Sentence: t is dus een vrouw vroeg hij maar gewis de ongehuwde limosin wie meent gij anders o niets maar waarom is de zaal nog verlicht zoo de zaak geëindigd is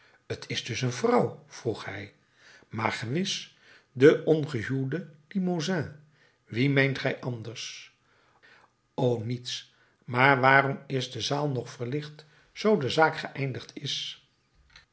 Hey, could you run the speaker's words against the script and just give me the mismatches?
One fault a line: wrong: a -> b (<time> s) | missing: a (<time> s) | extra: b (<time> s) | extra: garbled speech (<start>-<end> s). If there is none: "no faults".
no faults